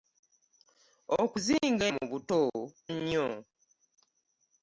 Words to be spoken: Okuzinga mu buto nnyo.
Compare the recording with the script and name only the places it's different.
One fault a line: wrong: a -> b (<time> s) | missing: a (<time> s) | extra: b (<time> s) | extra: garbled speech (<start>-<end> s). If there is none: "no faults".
no faults